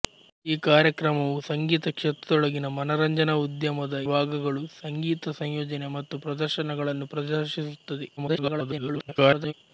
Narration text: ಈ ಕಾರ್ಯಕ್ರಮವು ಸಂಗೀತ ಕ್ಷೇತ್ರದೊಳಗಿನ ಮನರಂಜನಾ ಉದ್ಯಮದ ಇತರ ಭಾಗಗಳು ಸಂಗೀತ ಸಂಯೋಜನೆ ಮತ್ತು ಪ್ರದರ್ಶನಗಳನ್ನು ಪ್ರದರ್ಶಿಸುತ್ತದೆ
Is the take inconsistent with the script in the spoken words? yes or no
yes